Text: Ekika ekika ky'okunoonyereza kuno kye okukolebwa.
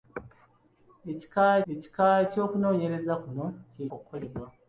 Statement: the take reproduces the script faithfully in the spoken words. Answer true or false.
true